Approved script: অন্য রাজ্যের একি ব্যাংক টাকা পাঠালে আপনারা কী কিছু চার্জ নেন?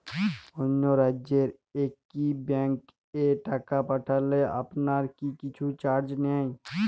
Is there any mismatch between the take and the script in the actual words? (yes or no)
yes